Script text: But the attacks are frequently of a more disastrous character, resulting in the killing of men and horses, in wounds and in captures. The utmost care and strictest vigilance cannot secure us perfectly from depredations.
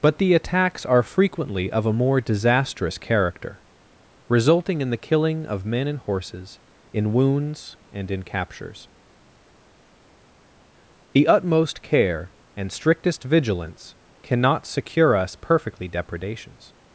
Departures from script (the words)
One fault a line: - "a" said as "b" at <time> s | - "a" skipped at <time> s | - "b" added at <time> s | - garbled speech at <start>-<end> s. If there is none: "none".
- "from" skipped at 15.9 s